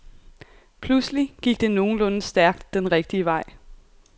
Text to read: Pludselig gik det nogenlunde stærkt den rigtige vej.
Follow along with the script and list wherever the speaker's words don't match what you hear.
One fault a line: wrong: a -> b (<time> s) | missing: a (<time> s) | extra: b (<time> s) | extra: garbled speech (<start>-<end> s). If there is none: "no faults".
no faults